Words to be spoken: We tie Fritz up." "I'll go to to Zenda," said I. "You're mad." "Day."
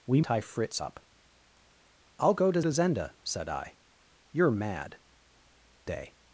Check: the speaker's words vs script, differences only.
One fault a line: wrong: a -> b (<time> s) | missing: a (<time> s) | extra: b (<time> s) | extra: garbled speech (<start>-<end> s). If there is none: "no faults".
no faults